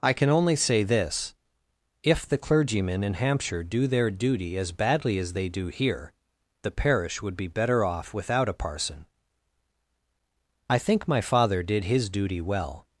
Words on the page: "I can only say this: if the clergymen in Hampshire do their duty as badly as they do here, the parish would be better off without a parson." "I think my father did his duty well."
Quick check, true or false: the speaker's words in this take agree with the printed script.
true